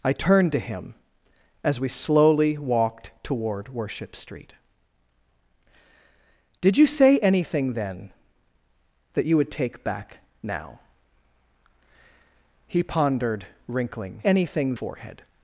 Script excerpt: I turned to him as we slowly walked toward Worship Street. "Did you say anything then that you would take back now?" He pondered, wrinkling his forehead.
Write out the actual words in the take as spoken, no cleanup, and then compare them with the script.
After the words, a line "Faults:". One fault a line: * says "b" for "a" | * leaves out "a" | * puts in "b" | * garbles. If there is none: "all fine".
I turned to him as we slowly walked toward Worship Street. "Did you say anything then that you would take back now?" He pondered, wrinkling anything forehead.
Faults:
* says "anything" for "his"